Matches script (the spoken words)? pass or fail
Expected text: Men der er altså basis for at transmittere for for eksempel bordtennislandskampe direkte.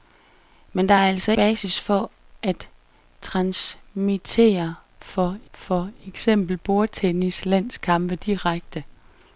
pass